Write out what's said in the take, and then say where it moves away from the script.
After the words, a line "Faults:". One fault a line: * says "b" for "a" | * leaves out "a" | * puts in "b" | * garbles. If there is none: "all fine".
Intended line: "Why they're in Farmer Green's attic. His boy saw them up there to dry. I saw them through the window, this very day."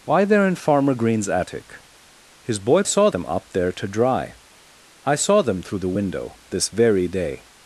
"Why they're in Farmer Green's attic. His boy saw them up there to dry. I saw them through the window, this very day."
Faults:
all fine